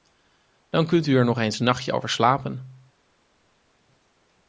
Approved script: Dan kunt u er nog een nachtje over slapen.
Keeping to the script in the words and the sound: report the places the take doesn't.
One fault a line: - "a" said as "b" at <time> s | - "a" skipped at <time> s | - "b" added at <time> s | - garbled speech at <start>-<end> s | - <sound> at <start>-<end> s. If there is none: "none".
- "eens" added at 1.4 s